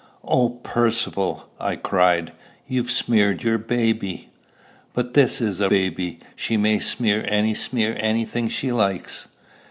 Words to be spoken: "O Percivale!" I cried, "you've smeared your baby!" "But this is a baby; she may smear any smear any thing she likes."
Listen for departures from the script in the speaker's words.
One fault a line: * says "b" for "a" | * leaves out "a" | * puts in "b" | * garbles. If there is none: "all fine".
all fine